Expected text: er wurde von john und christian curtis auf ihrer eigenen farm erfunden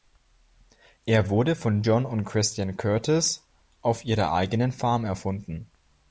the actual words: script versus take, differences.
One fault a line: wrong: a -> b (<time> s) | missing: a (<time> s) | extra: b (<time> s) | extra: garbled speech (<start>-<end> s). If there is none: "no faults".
no faults